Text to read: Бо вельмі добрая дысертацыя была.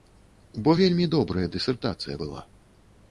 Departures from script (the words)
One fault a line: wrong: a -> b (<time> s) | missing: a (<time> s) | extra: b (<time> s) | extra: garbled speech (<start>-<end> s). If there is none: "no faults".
no faults